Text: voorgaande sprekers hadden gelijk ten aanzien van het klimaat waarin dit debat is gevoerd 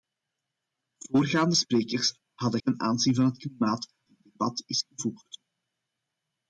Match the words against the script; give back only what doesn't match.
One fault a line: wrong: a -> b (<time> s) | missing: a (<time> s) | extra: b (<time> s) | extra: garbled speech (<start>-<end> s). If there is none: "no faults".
missing: gelijk (2.6 s)
missing: waarin (3.9 s)